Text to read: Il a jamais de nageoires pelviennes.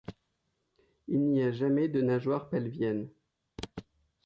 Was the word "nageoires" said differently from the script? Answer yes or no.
no